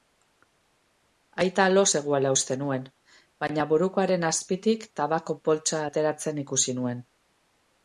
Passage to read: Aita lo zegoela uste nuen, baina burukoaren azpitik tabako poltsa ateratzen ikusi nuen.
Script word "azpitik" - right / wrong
right